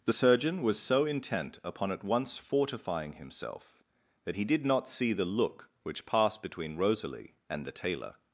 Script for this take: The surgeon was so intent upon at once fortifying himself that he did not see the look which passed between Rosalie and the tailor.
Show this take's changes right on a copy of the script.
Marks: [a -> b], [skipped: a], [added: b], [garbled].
The surgeon was so intent upon at once fortifying himself that he did not see the look which passed between Rosalie and the tailor.